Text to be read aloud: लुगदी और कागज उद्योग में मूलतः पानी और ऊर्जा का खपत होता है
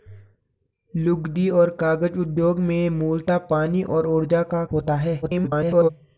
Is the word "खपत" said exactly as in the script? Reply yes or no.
no